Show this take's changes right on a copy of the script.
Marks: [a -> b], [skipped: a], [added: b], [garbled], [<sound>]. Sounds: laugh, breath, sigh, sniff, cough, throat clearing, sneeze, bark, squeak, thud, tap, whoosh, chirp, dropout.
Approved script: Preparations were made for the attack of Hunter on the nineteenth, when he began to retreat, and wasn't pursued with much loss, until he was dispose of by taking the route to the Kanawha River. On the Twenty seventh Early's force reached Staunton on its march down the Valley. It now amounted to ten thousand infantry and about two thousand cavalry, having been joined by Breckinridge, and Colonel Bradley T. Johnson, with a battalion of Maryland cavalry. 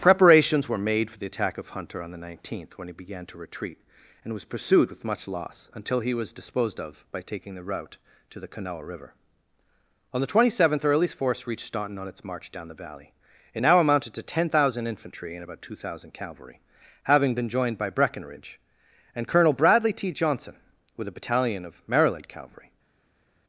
Preparations were made for the attack of Hunter on the nineteenth, when he began to retreat, and [wasn't -> was] pursued with much loss, until he was [dispose -> disposed] of by taking the route to the Kanawha River. On the Twenty seventh Early's force reached Staunton on its march down the Valley. It now amounted to ten thousand infantry and about two thousand cavalry, having been joined by Breckinridge, and Colonel Bradley T. Johnson, with a battalion of Maryland cavalry.